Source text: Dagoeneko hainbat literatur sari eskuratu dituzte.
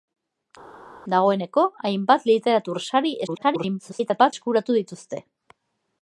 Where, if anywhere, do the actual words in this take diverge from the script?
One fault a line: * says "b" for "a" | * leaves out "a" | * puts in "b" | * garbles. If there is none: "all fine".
* garbles